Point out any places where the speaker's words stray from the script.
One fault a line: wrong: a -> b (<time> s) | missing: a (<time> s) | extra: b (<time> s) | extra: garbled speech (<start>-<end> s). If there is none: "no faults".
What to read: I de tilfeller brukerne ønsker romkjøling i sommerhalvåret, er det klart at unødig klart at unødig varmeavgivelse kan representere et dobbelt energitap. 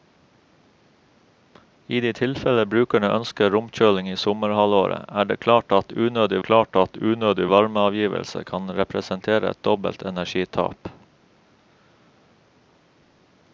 no faults